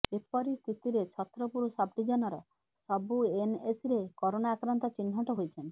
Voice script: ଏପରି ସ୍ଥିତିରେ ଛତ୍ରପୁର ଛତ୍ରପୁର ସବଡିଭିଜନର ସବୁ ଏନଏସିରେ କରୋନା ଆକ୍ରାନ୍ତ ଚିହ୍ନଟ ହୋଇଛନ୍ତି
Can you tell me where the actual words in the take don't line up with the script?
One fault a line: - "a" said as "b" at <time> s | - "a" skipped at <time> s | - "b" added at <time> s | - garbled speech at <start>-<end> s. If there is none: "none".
- "ଛତ୍ରପୁର" skipped at 1.7 s